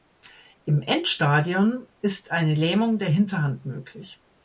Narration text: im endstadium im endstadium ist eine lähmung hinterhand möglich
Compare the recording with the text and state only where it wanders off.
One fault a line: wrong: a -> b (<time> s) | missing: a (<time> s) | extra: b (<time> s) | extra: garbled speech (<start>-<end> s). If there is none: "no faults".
missing: im endstadium (1.9 s)
extra: der (3.0 s)